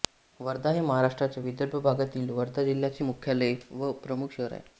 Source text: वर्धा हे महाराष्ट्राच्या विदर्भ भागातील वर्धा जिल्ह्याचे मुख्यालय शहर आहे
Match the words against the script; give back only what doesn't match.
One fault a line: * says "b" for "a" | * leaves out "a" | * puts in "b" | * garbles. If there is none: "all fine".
* puts in "व प्रमुख"